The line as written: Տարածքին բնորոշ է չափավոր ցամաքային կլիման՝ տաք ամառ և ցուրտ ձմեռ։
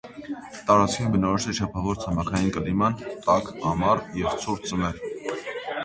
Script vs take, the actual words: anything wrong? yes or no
no